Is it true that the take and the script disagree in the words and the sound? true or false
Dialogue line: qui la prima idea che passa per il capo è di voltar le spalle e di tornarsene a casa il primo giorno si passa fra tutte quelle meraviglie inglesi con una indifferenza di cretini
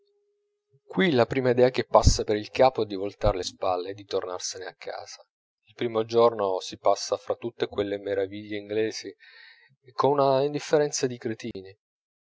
true